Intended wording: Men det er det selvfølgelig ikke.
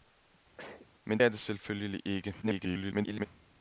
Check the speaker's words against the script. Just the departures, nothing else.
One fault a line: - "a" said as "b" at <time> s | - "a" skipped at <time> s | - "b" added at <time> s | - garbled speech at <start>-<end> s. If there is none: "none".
- "det" skipped at 1.2 s
- garbled speech at 2.4-3.3 s